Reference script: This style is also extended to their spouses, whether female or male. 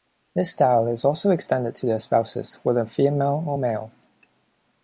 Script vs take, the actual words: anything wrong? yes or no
no